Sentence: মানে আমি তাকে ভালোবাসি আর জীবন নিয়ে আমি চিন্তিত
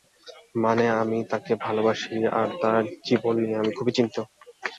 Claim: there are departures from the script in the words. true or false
true